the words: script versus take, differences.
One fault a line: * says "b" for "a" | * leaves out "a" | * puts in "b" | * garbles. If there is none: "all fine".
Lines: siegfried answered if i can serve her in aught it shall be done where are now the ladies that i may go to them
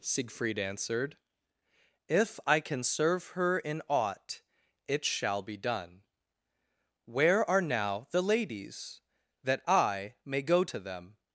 all fine